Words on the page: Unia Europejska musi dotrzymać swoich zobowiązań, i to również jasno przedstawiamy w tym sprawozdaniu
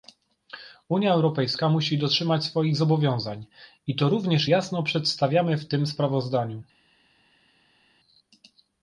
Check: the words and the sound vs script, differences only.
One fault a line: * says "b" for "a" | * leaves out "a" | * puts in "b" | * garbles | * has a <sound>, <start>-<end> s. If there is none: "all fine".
all fine